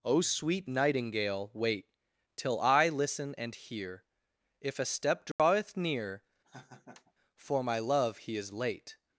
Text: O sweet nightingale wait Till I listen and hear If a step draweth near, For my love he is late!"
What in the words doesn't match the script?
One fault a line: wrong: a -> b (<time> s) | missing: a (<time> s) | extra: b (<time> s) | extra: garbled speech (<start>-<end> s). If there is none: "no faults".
no faults